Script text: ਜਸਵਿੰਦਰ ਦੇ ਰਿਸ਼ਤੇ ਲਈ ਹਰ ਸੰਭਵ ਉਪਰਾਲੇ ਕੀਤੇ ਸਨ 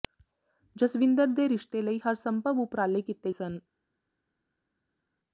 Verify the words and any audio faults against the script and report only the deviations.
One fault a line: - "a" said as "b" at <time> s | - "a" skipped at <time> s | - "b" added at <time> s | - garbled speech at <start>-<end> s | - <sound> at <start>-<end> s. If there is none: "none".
none